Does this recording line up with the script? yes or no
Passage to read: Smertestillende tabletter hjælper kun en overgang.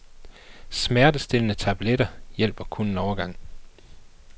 yes